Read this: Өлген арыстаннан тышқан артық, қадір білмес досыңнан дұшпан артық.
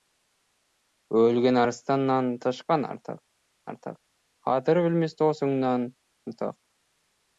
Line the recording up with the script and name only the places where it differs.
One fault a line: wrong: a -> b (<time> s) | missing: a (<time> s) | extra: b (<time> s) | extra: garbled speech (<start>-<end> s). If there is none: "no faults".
extra: артық (3.7 s)
missing: дұшпан (5.9 s)